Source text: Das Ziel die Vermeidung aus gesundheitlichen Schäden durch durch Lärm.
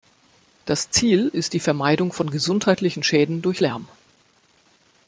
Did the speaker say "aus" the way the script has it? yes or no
no